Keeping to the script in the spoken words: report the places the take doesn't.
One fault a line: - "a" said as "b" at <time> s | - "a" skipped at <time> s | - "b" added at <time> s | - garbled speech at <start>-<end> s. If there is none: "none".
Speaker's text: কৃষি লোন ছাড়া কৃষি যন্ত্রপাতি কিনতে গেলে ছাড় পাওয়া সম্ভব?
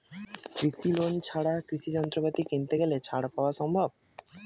none